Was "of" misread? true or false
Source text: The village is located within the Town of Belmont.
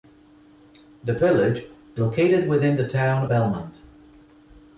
true